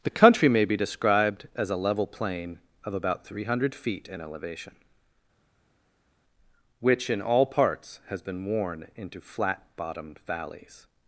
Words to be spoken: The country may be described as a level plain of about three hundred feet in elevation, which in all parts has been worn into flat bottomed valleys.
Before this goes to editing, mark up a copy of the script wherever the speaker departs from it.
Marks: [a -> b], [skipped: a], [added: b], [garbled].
The country may be described as a level plain of about three hundred feet in elevation, which in all parts has been worn into flat bottomed valleys.